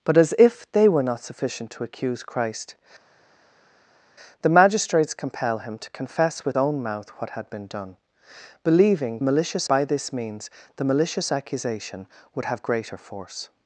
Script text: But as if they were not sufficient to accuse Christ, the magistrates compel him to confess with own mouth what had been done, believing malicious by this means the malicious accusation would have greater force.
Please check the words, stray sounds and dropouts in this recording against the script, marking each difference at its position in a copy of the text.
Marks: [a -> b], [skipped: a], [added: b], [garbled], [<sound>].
But as if they were not sufficient to accuse Christ, the magistrates compel him to confess with own mouth what had been done, believing malicious by this means the malicious accusation would have greater force.